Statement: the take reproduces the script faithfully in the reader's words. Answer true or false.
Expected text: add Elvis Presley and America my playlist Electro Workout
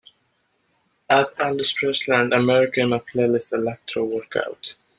false